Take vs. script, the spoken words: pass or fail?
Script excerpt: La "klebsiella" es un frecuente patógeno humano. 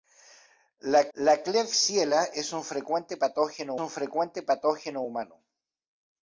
fail